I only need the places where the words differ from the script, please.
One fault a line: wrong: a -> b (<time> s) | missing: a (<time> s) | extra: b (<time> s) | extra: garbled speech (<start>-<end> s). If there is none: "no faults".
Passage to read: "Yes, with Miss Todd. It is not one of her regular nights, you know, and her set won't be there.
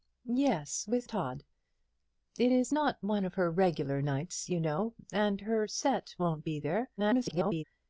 missing: Miss (1.1 s)
extra: garbled speech (7.0-7.6 s)